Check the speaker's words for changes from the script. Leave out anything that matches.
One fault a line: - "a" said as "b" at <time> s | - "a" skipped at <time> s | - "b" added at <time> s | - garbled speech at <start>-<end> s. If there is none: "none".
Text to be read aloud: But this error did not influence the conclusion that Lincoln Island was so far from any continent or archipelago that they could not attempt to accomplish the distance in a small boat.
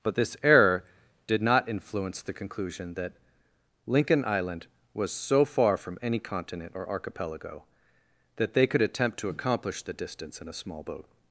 - "not" skipped at 8.8 s